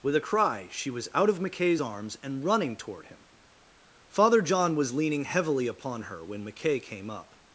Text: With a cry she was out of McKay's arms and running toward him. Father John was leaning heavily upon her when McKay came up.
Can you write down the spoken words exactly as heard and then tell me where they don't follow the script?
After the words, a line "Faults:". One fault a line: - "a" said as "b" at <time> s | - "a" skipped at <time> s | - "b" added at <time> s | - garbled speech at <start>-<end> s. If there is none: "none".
With a cry she was out of McKay's arms and running toward him. Father John was leaning heavily upon her when McKay came up.
Faults:
none